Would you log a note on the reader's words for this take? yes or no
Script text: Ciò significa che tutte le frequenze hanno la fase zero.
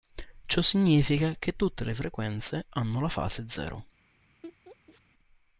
no